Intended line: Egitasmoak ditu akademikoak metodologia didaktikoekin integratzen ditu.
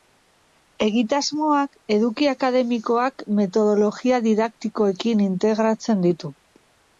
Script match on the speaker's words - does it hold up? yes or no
no